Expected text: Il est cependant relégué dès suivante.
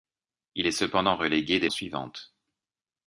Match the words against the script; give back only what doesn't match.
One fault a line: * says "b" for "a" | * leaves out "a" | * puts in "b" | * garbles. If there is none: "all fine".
all fine